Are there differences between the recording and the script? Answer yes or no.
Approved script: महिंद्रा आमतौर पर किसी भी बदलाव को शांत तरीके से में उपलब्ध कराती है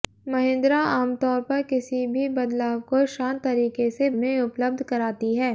no